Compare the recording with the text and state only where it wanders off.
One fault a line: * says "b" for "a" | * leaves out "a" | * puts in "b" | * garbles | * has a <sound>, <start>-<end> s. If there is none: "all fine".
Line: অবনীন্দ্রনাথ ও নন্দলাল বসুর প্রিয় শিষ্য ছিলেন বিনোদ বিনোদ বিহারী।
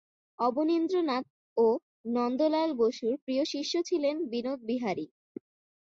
* leaves out "বিনোদ"